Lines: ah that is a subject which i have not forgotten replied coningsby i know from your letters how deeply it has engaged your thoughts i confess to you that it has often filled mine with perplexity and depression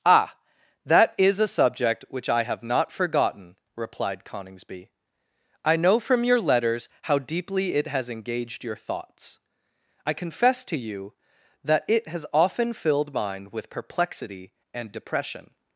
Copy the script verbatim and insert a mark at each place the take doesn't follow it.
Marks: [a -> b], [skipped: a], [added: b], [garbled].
ah that is a subject which i have not forgotten replied coningsby i know from your letters how deeply it has engaged your thoughts i confess to you that it has often filled mine with perplexity and depression